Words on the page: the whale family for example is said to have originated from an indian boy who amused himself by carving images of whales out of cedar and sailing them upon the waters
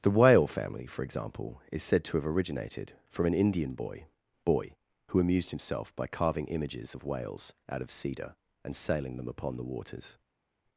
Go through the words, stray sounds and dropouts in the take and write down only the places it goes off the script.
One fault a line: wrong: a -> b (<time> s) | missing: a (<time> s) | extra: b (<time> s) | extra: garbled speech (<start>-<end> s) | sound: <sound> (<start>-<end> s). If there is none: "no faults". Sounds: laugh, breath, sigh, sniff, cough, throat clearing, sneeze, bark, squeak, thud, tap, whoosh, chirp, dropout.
extra: boy (4.4 s)